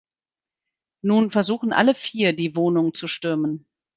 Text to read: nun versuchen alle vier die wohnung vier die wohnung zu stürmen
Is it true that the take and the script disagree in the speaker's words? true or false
true